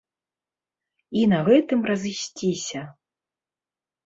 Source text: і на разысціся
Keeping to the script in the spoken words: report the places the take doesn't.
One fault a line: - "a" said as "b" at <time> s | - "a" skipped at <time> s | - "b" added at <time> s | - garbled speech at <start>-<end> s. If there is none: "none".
- "гэтым" added at 1.5 s